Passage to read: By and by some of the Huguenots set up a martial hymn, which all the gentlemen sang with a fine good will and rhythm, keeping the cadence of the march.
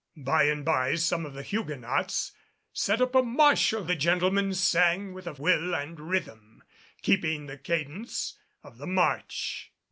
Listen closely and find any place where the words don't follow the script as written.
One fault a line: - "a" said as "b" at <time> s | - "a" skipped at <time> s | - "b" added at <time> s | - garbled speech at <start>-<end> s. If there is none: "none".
- "hymn which all" skipped at 3.9 s
- "fine good" skipped at 5.3 s